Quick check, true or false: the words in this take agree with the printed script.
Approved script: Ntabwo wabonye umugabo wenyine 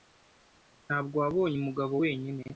true